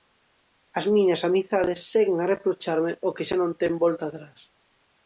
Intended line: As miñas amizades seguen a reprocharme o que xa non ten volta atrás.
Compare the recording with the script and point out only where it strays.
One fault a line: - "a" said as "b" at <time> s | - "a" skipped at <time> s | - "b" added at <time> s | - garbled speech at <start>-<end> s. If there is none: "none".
none